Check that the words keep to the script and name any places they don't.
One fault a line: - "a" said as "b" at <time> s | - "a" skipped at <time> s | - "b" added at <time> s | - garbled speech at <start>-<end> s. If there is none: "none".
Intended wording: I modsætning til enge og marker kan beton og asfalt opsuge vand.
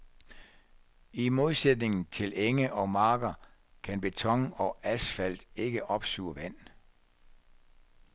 - "ikke" added at 5.6 s